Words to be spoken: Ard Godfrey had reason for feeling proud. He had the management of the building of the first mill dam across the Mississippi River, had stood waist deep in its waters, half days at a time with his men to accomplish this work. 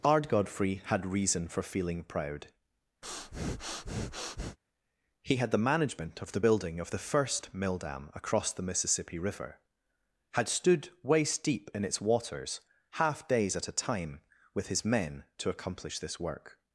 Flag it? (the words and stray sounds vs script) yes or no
yes